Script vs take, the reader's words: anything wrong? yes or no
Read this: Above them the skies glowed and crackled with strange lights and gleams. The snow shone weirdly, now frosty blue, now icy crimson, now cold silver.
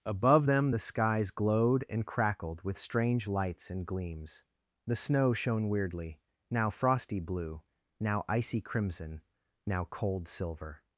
no